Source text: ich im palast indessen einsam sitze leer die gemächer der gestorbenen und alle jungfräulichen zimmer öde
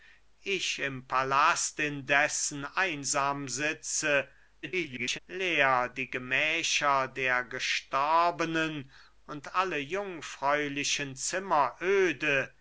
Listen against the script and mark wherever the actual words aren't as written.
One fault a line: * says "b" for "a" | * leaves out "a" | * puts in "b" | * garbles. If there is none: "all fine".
* garbles